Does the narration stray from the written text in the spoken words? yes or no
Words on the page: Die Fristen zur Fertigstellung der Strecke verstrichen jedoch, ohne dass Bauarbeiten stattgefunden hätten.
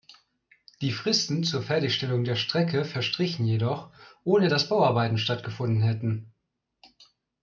no